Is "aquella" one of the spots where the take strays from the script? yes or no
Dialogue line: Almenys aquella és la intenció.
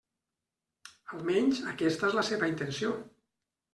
yes